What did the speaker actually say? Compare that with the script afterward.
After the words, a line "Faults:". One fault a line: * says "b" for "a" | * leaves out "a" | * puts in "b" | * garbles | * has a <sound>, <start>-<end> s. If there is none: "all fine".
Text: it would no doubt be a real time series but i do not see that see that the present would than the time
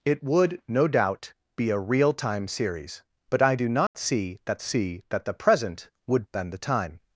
it would no doubt be a real time series but i do not see that see that the present would than the time
Faults:
* has a dropout, 3.9-3.9 s